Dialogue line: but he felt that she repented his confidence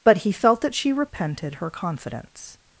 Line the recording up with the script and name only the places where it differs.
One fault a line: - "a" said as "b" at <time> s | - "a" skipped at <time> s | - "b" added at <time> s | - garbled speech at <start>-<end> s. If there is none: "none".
- "his" said as "her" at 1.6 s